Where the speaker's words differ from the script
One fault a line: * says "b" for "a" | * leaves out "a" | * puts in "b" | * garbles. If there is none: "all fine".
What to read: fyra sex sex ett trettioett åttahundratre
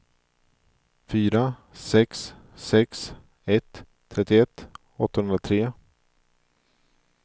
all fine